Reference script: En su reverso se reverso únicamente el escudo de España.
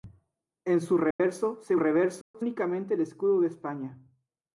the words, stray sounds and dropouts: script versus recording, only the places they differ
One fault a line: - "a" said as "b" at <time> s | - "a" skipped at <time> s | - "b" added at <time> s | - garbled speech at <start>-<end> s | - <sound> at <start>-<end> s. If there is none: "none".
- dropout at 1.1-1.2 s
- dropout at 2.2-2.3 s